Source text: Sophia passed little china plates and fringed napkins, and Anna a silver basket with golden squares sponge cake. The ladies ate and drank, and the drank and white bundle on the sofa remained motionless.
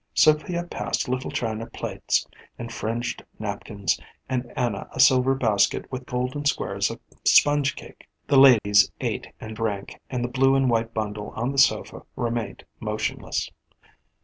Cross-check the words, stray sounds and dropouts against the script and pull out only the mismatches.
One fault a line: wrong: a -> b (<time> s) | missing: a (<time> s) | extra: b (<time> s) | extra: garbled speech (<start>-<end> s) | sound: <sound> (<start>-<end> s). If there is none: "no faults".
extra: of (6.9 s)
sound: dropout (8.6-8.6 s)
wrong: drank -> blue (10.3 s)